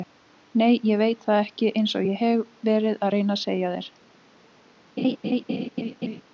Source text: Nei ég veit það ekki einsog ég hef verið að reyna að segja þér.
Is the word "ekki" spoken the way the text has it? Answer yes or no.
yes